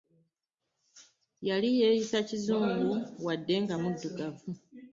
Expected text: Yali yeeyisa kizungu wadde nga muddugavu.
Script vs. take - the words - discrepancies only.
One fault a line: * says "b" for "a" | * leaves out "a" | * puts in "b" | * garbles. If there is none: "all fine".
all fine